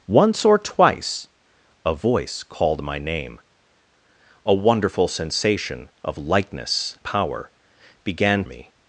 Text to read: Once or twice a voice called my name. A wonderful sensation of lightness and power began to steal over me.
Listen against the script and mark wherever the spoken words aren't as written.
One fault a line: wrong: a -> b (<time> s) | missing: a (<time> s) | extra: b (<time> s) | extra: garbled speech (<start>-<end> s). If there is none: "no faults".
missing: and (7.0 s)
missing: to steal over (8.4 s)